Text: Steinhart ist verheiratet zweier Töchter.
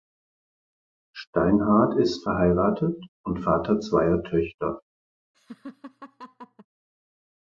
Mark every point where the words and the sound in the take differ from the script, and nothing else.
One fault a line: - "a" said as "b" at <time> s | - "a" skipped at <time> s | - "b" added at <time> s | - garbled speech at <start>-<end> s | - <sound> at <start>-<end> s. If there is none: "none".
- "und Vater" added at 3.2 s
- laugh at 5.3-6.7 s